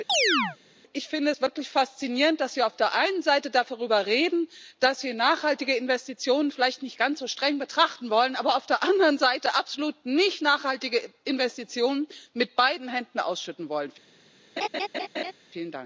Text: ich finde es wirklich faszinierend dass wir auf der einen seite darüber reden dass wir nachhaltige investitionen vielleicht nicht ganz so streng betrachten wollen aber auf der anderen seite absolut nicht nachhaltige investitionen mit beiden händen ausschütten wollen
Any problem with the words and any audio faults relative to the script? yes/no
yes